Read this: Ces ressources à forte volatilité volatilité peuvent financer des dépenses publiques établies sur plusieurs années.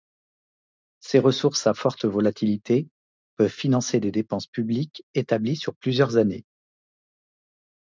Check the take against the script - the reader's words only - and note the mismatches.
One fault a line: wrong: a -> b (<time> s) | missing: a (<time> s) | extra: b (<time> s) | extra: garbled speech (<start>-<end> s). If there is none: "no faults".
missing: volatilité (2.9 s)